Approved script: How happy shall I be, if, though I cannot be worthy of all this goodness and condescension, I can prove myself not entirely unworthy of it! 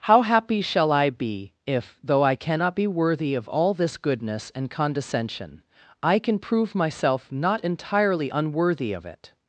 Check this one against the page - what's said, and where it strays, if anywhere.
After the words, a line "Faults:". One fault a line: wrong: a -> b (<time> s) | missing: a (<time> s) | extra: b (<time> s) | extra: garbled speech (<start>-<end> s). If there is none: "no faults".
How happy shall I be, if, though I cannot be worthy of all this goodness and condescension, I can prove myself not entirely unworthy of it!
Faults:
no faults